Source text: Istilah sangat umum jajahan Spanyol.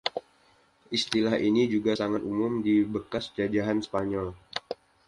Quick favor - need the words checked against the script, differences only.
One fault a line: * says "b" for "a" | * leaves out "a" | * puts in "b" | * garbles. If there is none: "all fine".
* puts in "ini juga"
* puts in "di bekas"